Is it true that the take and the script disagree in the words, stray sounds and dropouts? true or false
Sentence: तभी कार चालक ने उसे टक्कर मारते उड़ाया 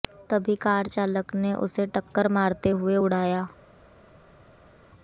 true